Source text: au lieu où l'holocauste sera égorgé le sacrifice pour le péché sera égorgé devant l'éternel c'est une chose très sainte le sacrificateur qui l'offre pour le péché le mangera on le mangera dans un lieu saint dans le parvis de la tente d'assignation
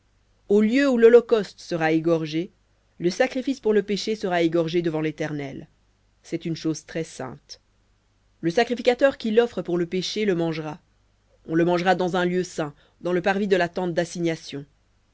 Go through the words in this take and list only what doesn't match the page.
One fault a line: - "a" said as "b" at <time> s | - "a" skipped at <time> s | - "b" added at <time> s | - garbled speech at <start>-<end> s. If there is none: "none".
none